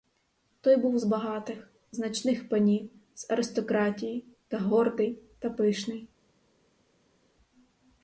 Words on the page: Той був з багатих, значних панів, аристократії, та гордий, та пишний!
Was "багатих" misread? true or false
false